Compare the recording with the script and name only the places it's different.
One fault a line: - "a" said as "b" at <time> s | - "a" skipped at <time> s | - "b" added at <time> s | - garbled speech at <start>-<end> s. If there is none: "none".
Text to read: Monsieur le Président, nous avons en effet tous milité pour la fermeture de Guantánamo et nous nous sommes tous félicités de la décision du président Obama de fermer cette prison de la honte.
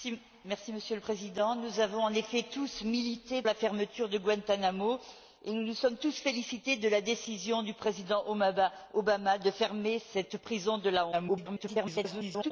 - "pour" skipped at 3.4 s
- garbled speech at 11.1-12.5 s